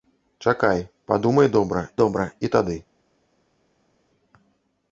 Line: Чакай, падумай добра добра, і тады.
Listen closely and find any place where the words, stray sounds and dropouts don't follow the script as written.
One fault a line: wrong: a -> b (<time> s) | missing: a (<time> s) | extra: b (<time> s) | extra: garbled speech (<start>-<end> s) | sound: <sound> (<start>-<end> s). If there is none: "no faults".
no faults